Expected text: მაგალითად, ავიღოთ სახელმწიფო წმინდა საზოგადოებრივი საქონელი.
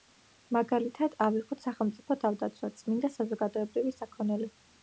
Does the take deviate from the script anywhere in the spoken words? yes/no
yes